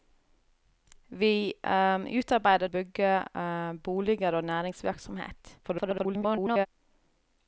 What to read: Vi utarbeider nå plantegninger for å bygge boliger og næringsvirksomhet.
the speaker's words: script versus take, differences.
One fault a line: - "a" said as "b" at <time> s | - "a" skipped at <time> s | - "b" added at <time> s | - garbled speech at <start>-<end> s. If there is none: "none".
- "nå plantegninger for" skipped at 2.7 s
- garbled speech at 5.6-6.7 s